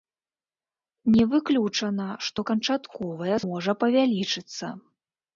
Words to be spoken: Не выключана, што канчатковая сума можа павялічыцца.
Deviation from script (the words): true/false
true